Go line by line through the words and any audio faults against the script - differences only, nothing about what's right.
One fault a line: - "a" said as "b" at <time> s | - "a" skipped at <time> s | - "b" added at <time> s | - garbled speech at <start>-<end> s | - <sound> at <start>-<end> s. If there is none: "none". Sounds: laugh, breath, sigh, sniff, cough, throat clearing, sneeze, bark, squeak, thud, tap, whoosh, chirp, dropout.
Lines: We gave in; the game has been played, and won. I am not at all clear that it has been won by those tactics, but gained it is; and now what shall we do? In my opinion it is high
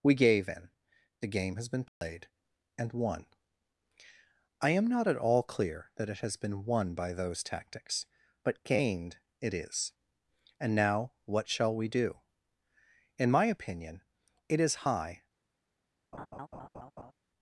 - dropout at 1.9-2.0 s
- laugh at 16.1-17.1 s